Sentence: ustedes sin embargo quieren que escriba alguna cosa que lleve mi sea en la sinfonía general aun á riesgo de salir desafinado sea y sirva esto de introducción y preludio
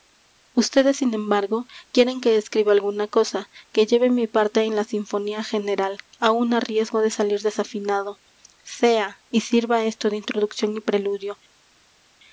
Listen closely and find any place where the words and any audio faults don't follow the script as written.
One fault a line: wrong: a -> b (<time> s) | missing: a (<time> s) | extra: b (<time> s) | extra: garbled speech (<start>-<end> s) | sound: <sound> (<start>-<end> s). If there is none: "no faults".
wrong: sea -> parte (4.3 s)